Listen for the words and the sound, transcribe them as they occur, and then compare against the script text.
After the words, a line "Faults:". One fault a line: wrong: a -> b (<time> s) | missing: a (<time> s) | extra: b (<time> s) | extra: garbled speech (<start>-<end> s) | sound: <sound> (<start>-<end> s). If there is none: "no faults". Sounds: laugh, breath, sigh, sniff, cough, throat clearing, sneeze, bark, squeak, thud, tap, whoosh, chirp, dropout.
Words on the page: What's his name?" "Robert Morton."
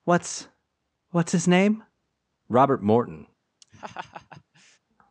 What's what's his name?" "Robert Morton."
Faults:
extra: what's (1.1 s)
sound: laugh (3.6-4.8 s)